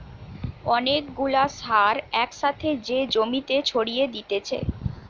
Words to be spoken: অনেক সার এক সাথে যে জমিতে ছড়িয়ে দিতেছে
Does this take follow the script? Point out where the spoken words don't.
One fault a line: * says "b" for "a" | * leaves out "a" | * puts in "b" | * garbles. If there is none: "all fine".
* puts in "গুলা"